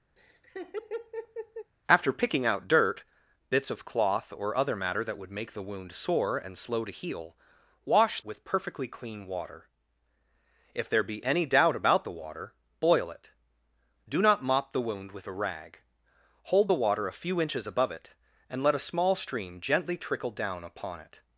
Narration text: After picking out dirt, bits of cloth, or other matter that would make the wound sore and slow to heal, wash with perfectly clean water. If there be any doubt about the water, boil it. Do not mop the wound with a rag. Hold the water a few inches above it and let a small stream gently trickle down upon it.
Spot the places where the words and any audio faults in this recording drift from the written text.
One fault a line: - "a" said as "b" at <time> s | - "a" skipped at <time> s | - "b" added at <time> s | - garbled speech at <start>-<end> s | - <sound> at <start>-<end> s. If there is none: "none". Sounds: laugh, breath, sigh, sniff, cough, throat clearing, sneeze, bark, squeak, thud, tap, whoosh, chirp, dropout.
- laugh at 0.2-1.7 s